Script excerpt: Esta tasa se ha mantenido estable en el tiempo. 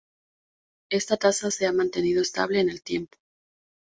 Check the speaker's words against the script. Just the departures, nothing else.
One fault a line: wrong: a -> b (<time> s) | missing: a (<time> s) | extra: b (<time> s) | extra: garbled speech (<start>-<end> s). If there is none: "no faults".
no faults